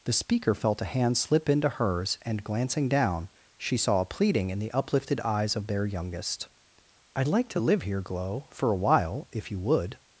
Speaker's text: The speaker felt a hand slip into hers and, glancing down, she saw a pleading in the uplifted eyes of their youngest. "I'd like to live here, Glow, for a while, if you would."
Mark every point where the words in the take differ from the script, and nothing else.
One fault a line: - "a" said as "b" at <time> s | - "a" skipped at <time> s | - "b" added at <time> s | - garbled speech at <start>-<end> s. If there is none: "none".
none